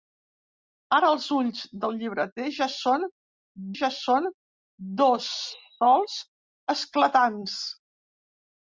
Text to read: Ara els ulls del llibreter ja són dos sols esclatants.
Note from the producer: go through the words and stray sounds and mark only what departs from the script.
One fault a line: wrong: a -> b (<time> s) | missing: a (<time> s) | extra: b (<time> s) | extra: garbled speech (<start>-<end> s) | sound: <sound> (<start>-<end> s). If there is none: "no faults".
extra: ja són (3.8 s)